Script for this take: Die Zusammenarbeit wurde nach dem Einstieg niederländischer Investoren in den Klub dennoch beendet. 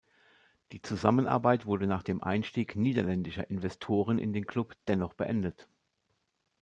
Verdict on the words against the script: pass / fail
pass